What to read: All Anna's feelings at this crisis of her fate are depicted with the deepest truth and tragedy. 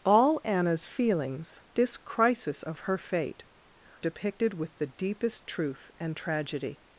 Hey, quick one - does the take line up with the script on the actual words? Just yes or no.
no